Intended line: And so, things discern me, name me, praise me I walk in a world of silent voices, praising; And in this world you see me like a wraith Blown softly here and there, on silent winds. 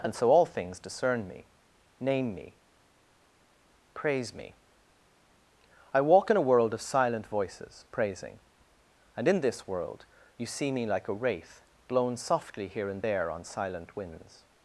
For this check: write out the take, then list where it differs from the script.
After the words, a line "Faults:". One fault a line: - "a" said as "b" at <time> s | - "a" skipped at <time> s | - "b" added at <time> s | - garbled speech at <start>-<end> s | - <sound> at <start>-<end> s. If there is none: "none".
And so, all things discern me, name me, praise me I walk in a world of silent voices, praising; And in this world you see me like a wraith Blown softly here and there, on silent winds.
Faults:
- "all" added at 0.3 s